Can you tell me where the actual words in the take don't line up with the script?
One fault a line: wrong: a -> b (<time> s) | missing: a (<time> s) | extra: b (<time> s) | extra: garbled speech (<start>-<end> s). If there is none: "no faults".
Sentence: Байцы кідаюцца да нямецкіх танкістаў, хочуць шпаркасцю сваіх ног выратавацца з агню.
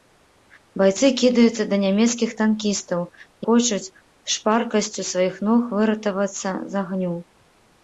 no faults